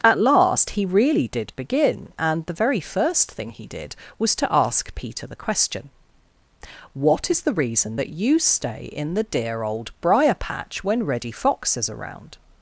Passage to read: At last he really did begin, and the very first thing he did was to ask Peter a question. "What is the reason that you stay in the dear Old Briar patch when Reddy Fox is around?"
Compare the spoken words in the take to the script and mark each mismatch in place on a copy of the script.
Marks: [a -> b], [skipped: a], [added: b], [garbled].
At last he really did begin, and the very first thing he did was to ask Peter [a -> the] question. "What is the reason that you stay in the dear Old Briar patch when Reddy Fox is around?"